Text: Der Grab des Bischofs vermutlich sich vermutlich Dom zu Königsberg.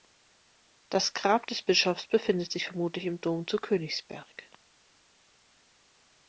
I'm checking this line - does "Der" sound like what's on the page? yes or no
no